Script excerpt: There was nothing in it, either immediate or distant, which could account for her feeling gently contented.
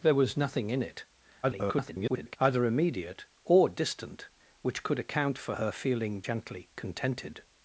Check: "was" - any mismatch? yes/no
no